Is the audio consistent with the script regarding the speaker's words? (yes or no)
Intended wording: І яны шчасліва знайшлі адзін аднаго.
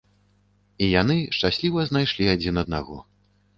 yes